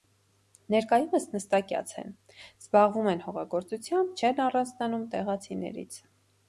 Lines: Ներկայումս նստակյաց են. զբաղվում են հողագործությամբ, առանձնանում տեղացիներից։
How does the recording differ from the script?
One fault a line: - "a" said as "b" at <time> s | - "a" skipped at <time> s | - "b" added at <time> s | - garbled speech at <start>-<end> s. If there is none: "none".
- "չեն" added at 4.2 s